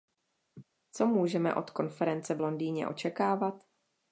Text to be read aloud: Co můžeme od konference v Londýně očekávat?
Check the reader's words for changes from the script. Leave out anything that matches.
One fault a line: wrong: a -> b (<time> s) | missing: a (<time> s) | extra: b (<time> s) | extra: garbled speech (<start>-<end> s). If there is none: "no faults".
no faults